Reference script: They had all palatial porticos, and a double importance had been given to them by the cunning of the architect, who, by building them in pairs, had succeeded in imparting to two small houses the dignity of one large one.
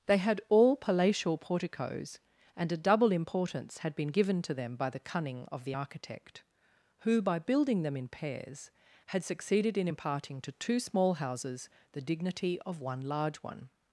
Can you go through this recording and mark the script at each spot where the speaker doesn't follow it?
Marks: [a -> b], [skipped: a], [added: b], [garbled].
They had all palatial porticos, and a double importance had been given to them by the cunning of the architect, who, by building them in pairs, had succeeded in imparting to two small houses the dignity of one large one.